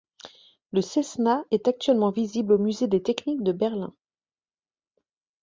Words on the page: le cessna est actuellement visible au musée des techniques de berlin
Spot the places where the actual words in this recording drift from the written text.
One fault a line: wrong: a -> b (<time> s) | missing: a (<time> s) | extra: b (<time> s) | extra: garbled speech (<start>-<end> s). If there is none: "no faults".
no faults